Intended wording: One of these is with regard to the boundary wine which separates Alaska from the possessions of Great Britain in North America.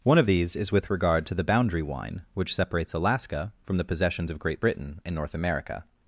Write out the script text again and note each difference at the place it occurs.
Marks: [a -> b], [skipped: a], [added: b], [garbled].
One of these is with regard to the boundary wine which separates Alaska from the possessions of Great Britain in North America.